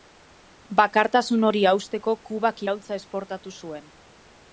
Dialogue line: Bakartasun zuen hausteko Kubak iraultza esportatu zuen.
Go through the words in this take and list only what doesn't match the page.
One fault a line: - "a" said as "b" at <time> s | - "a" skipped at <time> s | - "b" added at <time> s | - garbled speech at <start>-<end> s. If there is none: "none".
- "zuen" said as "hori" at 1.5 s